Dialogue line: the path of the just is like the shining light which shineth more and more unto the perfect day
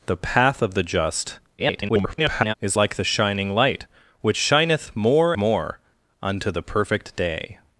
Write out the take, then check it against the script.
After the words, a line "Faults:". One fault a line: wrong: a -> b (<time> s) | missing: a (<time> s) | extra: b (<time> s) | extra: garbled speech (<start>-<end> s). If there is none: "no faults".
the path of the just [garbled] is like the shining light which shineth more more unto the perfect day
Faults:
extra: garbled speech (1.6-2.5 s)
missing: and (5.3 s)